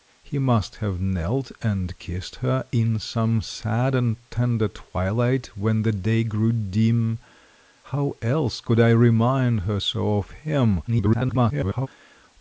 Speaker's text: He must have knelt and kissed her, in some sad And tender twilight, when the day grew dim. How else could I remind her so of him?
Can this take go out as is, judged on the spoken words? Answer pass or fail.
fail